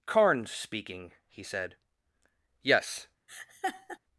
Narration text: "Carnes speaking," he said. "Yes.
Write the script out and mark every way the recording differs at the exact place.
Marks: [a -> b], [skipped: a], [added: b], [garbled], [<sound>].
"Carnes speaking," he said. "Yes. [laugh]